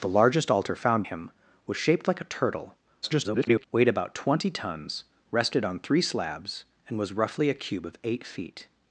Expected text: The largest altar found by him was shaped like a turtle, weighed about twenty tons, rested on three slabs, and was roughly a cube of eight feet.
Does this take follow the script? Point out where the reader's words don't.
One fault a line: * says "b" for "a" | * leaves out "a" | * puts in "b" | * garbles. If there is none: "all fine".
* leaves out "by"
* garbles